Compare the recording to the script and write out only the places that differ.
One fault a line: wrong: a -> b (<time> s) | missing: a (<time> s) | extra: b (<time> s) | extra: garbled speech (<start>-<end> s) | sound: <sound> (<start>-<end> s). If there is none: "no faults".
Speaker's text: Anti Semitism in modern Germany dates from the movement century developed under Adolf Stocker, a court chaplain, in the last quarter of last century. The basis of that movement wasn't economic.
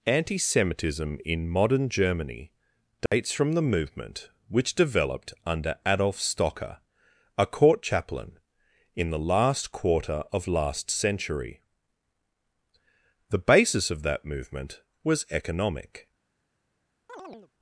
sound: dropout (3.1-3.1 s)
wrong: century -> which (4.5 s)
wrong: wasn't -> was (15.0 s)
sound: chirp (17.1-17.5 s)